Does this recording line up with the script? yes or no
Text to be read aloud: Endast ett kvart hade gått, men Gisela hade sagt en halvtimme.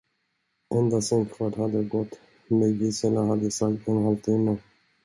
no